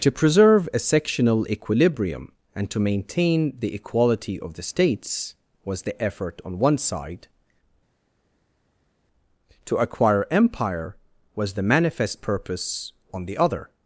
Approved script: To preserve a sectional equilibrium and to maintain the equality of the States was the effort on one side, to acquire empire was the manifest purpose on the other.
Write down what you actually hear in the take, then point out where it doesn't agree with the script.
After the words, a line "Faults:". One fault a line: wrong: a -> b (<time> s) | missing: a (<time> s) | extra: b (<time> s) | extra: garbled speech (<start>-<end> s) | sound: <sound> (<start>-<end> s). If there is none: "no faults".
To preserve a sectional equilibrium and to maintain the equality of the States was the effort on one side, to acquire empire was the manifest purpose on the other.
Faults:
no faults